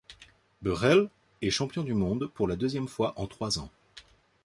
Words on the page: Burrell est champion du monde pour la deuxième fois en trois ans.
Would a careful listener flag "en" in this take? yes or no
no